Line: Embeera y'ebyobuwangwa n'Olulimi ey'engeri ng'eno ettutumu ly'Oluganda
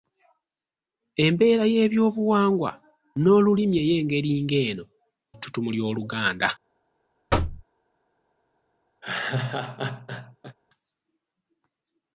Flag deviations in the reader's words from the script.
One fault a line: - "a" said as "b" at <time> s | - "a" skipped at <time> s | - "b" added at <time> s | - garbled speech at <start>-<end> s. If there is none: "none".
none